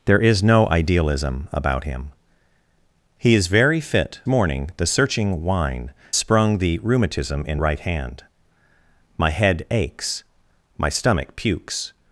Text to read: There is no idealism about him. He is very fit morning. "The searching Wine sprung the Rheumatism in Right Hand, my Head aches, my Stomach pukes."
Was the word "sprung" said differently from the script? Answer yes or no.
no